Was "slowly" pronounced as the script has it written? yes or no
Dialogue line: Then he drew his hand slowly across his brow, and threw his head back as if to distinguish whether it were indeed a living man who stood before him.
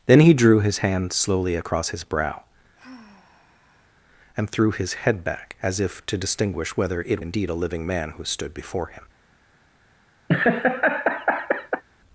yes